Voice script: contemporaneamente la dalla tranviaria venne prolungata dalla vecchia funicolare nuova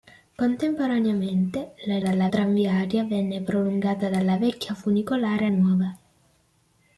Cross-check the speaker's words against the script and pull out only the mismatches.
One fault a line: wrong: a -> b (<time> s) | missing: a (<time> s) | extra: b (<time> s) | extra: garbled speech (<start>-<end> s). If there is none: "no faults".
no faults